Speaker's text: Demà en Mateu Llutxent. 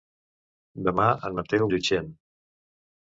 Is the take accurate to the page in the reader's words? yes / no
yes